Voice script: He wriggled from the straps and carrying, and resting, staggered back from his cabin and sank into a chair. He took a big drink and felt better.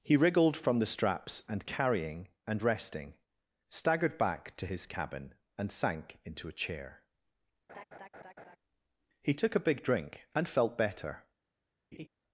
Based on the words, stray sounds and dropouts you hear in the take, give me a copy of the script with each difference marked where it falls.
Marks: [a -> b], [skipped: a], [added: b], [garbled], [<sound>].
He wriggled from the straps and carrying, and resting, staggered back [from -> to] his cabin and sank into a chair. [laugh] He took a big drink and felt better. [laugh]